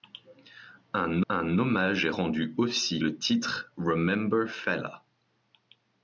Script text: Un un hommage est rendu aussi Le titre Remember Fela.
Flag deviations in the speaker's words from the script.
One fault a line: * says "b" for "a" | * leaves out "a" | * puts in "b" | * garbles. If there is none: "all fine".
all fine